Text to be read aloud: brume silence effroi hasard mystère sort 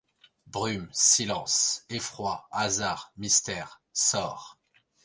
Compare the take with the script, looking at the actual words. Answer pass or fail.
pass